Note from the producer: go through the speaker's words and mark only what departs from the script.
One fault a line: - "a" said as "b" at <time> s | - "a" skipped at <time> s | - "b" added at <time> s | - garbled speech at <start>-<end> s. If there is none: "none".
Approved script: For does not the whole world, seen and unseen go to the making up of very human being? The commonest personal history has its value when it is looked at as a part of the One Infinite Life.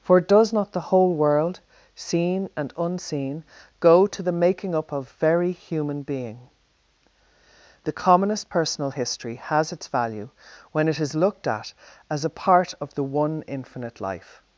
none